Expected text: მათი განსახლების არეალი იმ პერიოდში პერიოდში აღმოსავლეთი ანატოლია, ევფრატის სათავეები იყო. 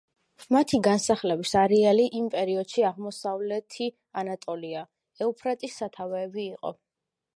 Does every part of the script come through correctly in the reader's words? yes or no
no